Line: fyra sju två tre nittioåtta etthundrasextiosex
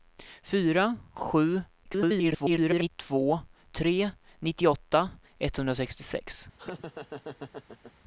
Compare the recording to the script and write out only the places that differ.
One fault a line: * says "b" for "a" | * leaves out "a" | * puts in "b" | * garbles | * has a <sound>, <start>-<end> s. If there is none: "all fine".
* garbles
* has a laugh, 6.6-7.9 s